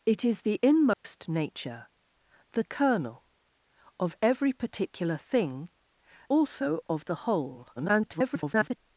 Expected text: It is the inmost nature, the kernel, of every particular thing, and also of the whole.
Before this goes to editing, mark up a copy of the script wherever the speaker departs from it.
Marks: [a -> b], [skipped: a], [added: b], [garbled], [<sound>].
It is the inmost [dropout] nature, the kernel, of every particular thing, [skipped: and] also of the whole. [garbled]